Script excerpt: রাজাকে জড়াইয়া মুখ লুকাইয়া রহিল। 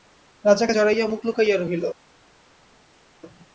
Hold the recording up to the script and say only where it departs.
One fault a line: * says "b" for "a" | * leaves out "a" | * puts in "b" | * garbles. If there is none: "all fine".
all fine